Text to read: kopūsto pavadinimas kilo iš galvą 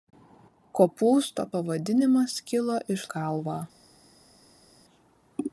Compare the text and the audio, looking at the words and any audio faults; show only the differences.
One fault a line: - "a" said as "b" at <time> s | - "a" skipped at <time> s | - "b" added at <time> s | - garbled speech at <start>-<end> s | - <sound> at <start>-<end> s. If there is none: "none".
none